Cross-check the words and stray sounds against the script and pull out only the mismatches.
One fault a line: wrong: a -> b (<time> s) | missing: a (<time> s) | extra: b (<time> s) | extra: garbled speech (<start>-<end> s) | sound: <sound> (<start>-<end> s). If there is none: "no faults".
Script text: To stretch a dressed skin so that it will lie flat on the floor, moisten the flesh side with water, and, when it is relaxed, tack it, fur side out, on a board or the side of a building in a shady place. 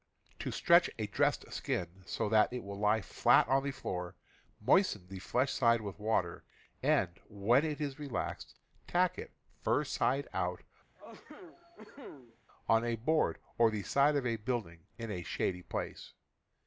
sound: cough (11.0-12.4 s)